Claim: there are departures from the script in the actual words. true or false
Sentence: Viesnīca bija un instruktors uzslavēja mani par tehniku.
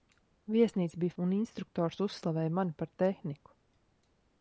false